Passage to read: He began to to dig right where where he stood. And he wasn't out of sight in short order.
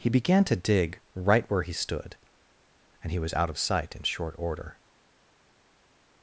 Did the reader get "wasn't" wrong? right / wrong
wrong